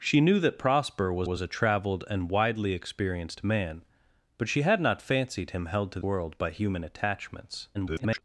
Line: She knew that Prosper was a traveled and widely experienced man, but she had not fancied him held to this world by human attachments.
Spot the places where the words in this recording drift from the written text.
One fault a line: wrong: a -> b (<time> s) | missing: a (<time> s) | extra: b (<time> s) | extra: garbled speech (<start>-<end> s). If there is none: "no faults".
extra: was (1.2 s)
missing: this (6.0 s)
extra: garbled speech (7.7-8.2 s)